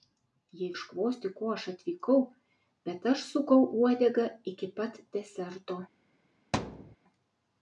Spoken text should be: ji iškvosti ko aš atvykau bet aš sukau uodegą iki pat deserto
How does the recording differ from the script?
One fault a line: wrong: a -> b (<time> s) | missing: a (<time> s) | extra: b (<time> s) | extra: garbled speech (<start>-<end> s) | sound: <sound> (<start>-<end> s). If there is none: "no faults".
sound: thud (6.5-7.0 s)